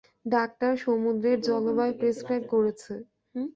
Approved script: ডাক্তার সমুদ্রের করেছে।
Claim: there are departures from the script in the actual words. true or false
true